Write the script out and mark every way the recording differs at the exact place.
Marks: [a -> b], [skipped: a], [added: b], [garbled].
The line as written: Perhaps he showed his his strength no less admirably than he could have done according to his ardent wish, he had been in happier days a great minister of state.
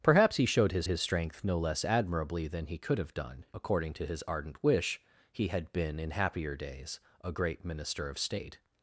Perhaps he showed his his strength no less admirably than he could have done according to his ardent wish, he had been in happier days a great minister of state.